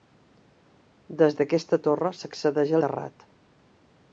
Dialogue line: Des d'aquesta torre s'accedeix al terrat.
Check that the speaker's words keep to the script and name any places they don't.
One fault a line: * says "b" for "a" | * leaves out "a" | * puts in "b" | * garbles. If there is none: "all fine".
* leaves out "al"